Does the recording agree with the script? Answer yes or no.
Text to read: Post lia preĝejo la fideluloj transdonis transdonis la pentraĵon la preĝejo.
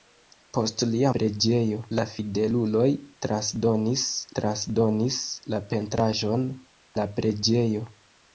yes